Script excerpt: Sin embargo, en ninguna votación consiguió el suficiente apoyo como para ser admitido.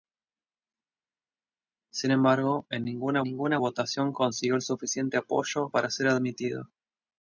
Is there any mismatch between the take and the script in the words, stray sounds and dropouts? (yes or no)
yes